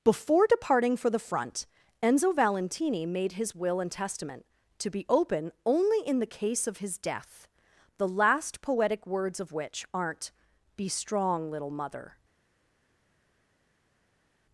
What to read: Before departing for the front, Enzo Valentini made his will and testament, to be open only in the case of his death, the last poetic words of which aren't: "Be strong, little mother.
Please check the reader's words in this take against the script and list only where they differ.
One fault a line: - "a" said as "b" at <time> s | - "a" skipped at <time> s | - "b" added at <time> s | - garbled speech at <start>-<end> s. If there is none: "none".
none